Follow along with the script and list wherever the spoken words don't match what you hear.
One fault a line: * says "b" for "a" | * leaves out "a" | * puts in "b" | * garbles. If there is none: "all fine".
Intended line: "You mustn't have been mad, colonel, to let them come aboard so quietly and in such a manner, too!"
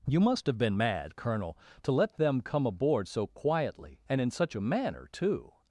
* says "must" for "mustn't"